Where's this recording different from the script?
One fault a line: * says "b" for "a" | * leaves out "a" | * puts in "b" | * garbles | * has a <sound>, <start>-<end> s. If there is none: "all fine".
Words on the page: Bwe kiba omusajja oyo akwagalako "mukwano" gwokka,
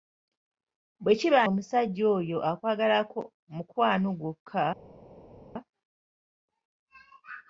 all fine